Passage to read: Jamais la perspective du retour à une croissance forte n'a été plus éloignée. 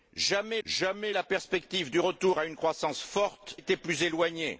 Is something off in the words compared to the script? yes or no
yes